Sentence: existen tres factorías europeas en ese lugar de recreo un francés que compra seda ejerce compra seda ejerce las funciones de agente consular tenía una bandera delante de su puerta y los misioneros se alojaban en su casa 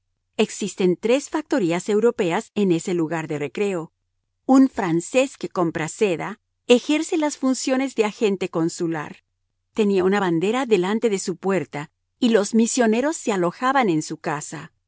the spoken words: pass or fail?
fail